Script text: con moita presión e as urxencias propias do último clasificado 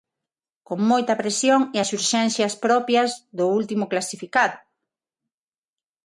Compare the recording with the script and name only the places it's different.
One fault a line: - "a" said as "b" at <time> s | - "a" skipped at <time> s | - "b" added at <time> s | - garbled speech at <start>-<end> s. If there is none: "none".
none